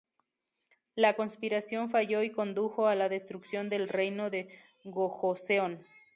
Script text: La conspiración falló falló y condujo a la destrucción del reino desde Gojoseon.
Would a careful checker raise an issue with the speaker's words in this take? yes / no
yes